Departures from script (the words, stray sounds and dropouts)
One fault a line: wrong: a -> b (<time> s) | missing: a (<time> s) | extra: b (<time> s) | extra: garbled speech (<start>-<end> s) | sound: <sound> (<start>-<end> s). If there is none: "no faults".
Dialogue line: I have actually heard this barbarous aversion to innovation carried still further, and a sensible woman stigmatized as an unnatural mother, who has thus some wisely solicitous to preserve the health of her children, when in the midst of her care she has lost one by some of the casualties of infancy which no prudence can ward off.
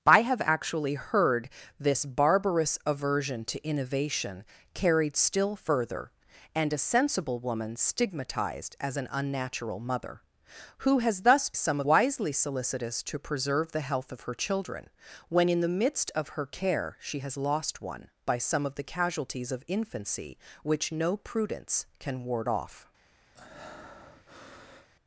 sound: breath (23.4-24.9 s)